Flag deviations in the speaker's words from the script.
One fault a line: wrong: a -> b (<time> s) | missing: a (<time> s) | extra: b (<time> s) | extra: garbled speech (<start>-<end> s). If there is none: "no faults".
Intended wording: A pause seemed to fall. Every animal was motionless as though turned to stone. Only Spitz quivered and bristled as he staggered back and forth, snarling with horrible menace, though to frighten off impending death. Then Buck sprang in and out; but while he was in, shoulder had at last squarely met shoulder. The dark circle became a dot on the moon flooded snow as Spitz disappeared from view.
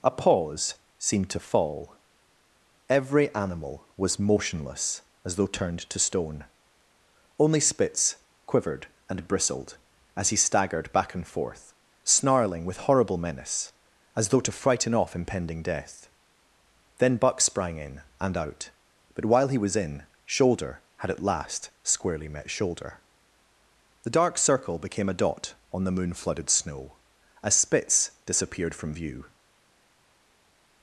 extra: as (14.2 s)